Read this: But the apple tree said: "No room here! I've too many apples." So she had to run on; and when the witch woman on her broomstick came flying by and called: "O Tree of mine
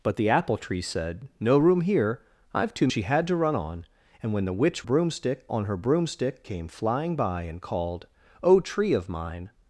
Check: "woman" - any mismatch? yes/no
yes